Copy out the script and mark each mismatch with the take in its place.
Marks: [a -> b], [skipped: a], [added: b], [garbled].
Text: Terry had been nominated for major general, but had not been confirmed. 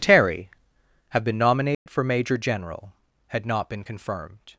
Terry [had -> have] been nominated for major general, [skipped: but] had not been confirmed.